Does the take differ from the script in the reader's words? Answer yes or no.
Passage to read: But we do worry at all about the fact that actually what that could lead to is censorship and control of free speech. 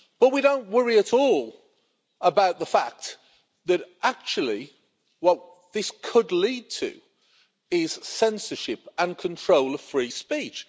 yes